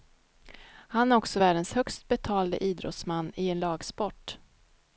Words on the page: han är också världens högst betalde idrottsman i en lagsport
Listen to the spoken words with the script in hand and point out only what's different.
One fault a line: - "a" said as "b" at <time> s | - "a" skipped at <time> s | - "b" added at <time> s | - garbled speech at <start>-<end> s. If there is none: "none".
none